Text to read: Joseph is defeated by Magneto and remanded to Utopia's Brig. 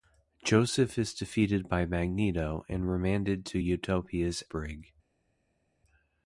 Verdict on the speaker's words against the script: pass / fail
pass